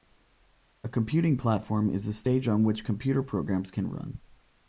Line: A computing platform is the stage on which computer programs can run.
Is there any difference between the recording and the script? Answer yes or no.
no